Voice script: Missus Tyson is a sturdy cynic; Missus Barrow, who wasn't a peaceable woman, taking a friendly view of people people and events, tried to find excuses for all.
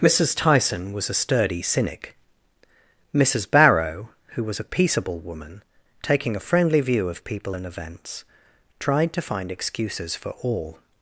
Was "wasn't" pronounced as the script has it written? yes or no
no